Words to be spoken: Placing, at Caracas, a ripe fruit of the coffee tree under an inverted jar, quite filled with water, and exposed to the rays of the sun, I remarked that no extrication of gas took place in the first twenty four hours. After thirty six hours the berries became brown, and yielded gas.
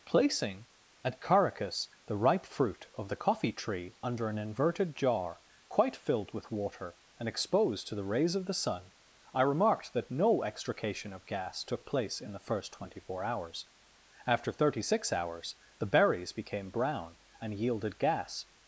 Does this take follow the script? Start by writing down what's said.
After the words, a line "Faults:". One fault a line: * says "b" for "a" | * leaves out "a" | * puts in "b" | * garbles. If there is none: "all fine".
Placing, at Caracas, the ripe fruit of the coffee tree under an inverted jar, quite filled with water, and exposed to the rays of the sun, I remarked that no extrication of gas took place in the first twenty four hours. After thirty six hours the berries became brown, and yielded gas.
Faults:
* says "the" for "a"